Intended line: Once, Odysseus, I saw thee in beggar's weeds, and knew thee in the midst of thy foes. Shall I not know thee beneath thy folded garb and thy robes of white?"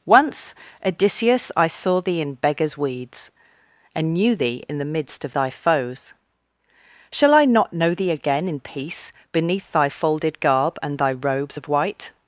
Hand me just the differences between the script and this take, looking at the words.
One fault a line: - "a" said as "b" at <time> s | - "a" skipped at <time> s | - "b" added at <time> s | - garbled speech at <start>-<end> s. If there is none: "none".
- "again in peace" added at 8.1 s